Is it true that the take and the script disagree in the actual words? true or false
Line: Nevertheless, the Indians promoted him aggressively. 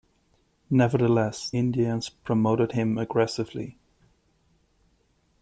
true